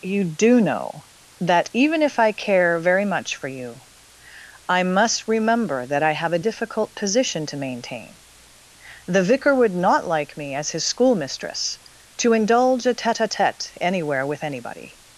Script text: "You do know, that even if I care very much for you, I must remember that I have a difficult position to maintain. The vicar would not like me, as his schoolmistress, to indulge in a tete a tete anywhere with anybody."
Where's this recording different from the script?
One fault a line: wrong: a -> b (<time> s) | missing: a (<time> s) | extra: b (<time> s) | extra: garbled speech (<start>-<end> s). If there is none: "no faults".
missing: in (12.9 s)